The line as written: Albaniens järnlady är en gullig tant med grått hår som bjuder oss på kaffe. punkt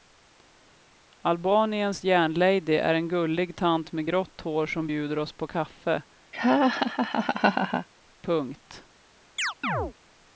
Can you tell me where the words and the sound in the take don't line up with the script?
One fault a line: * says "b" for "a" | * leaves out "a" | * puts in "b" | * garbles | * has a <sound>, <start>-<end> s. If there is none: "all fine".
* has a laugh, 6.3-7.9 s
* has a chirp, 9.4-9.9 s